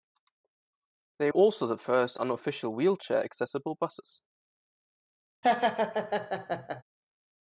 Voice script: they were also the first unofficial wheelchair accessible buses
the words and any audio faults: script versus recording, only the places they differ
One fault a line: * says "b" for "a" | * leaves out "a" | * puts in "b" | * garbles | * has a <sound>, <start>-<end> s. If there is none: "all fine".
* leaves out "were"
* has a laugh, 5.4-6.8 s